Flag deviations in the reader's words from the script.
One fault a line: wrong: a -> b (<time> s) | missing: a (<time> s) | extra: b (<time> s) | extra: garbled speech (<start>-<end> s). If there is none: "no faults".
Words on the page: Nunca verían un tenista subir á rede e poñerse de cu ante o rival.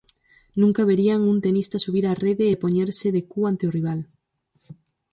no faults